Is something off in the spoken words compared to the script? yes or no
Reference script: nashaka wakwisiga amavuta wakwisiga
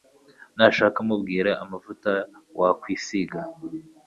yes